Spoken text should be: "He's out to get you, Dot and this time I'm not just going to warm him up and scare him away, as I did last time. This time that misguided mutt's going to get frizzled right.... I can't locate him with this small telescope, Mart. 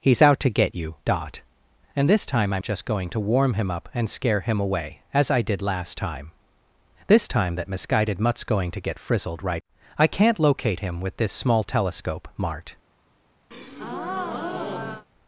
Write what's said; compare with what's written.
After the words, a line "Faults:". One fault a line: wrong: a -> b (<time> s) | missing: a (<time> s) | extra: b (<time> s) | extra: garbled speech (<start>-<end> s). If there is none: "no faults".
"He's out to get you, Dot and this time I'm just going to warm him up and scare him away, as I did last time. This time that misguided mutt's going to get frizzled right.... I can't locate him with this small telescope, Mart.
Faults:
missing: not (2.6 s)